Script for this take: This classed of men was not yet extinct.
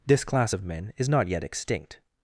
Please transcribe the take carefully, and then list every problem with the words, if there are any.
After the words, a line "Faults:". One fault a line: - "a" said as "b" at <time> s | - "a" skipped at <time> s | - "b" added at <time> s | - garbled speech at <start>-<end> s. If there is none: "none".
This class of men is not yet extinct.
Faults:
- "classed" said as "class" at 0.2 s
- "was" said as "is" at 1.0 s